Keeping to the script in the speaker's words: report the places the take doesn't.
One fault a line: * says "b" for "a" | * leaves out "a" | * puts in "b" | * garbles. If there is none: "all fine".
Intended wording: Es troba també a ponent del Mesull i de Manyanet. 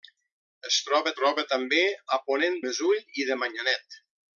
* puts in "troba"
* leaves out "del"